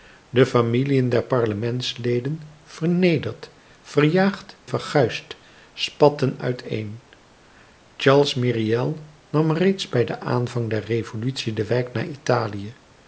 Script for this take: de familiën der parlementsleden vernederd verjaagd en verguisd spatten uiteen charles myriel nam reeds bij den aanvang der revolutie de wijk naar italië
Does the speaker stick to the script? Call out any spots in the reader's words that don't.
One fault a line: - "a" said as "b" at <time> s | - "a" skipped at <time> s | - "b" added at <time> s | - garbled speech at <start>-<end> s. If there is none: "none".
- "en" skipped at 4.6 s